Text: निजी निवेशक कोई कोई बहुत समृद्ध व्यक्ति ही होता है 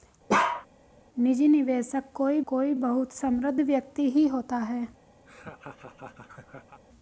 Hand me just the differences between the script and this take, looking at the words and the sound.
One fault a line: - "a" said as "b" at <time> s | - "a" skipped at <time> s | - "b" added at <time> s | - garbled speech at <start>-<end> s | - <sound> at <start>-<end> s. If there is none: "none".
- bark at 0.3-0.7 s
- laugh at 5.3-6.8 s